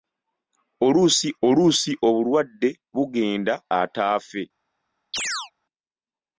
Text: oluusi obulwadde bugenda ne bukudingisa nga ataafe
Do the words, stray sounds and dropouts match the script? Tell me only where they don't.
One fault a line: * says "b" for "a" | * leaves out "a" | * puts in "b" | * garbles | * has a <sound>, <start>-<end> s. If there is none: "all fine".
* puts in "oluusi"
* leaves out "ne bukudingisa nga"
* has a chirp, 5.1-5.5 s